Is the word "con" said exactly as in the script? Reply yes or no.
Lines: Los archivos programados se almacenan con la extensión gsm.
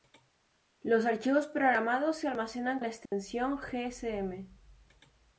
no